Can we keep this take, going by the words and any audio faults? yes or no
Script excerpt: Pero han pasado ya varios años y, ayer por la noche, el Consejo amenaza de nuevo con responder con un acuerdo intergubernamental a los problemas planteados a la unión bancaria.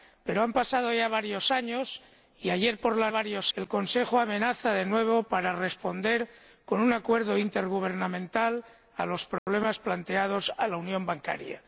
no